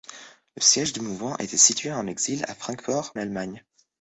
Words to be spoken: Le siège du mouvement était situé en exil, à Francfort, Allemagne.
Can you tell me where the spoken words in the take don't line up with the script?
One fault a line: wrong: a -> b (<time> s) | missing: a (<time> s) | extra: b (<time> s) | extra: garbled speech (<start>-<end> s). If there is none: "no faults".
no faults